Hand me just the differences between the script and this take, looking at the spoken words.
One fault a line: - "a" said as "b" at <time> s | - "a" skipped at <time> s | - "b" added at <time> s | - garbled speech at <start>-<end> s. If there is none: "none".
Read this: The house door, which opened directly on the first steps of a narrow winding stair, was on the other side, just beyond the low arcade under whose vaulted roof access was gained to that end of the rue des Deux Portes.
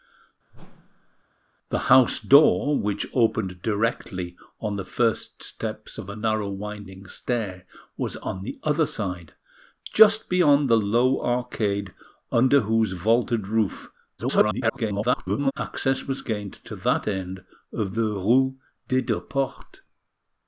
- garbled speech at 14.2-15.5 s